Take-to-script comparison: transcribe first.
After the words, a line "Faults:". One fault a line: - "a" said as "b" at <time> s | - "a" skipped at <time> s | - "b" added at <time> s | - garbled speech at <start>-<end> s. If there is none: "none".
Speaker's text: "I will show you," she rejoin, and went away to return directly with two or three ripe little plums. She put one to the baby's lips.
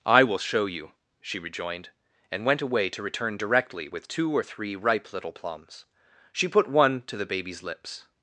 "I will show you," she rejoined, and went away to return directly with two or three ripe little plums. She put one to the baby's lips.
Faults:
- "rejoin" said as "rejoined" at 1.4 s